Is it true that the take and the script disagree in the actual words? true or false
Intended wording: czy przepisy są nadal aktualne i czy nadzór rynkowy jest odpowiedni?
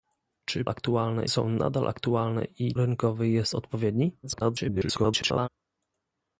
true